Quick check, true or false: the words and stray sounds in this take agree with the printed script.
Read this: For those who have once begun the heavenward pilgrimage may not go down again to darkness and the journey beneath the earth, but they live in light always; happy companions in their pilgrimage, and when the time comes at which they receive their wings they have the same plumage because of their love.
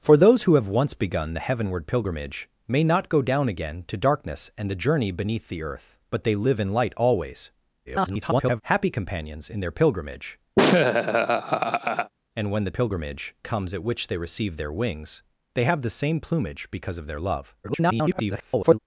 false